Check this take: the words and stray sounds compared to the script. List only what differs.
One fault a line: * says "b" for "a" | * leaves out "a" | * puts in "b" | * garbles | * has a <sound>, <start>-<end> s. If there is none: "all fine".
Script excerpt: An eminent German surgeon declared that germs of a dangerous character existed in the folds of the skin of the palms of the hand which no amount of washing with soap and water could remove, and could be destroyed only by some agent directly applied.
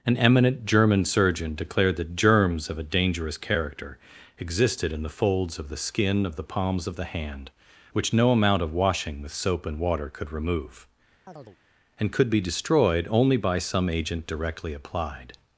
* has a chirp, 11.3-11.6 s